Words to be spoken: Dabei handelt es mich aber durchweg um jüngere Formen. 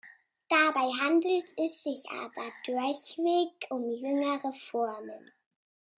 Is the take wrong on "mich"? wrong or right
wrong